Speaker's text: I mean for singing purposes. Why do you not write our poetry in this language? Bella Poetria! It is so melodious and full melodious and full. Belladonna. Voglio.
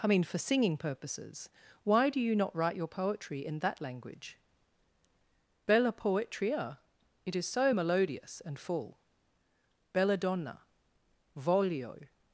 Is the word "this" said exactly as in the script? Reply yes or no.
no